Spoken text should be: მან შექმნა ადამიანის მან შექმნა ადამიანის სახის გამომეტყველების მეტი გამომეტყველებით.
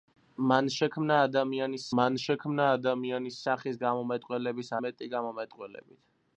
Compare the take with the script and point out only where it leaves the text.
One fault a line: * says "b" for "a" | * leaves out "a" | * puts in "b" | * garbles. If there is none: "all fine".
all fine